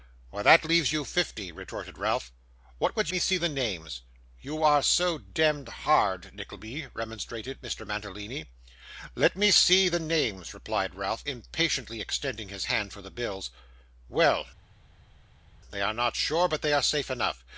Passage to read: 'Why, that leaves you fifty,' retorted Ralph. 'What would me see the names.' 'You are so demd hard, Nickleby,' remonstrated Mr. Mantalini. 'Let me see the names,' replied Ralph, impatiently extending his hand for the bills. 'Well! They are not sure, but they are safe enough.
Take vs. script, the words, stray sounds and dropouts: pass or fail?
pass